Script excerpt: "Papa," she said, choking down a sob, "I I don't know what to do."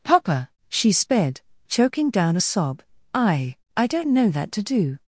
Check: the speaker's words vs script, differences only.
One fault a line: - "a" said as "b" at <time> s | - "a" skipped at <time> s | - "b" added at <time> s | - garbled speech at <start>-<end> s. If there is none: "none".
- "said" said as "sped" at 0.9 s
- "what" said as "that" at 4.3 s